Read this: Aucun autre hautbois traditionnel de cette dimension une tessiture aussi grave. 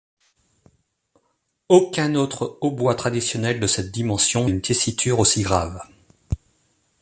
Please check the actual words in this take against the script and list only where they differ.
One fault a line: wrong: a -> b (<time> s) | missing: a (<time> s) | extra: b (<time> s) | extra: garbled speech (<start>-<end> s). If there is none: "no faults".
no faults